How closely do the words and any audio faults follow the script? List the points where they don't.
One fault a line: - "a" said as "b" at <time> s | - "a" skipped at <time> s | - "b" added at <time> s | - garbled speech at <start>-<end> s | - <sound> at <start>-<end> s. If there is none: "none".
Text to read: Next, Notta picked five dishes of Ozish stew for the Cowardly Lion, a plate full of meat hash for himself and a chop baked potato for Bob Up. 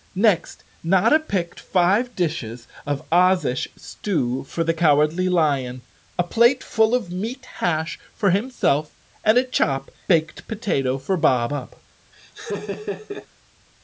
- laugh at 12.1-13.3 s